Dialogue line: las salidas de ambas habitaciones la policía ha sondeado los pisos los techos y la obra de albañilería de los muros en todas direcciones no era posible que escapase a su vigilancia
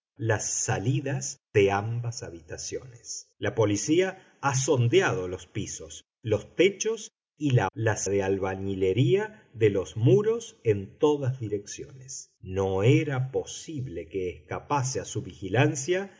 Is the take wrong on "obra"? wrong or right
wrong